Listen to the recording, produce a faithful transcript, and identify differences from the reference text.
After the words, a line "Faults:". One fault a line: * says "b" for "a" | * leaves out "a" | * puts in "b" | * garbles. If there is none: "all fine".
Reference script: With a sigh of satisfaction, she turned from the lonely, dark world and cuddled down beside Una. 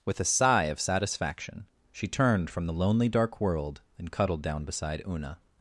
With a sigh of satisfaction, she turned from the lonely, dark world and cuddled down beside Una.
Faults:
all fine